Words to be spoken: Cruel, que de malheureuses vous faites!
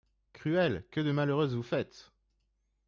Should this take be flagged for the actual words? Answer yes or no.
no